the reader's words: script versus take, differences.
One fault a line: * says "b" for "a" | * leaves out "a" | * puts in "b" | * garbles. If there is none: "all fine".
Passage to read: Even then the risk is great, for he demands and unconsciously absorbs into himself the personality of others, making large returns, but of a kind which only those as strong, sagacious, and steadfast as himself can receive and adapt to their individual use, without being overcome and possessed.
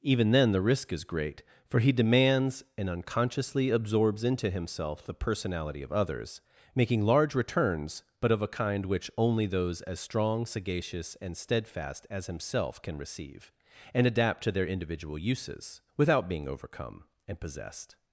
* says "uses" for "use"